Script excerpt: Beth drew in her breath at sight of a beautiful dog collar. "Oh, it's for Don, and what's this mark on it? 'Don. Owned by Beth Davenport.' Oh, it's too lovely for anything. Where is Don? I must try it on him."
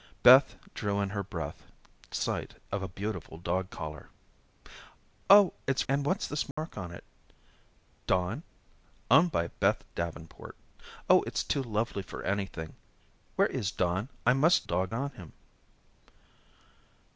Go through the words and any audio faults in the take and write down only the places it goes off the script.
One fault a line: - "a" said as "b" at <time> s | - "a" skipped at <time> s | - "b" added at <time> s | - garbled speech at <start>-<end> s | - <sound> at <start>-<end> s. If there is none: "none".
- "at" skipped at 1.6 s
- "for Don" skipped at 5.8 s
- dropout at 6.5-6.6 s
- "try" said as "dog" at 14.6 s